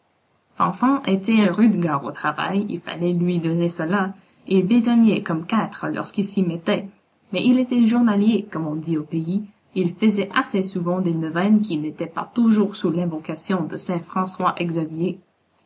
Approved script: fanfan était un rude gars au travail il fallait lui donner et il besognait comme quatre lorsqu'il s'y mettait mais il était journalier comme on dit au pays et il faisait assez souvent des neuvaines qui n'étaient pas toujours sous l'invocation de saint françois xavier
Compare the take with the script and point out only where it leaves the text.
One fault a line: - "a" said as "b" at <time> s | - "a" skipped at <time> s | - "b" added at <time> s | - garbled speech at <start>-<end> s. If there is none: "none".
- "cela" added at 3.7 s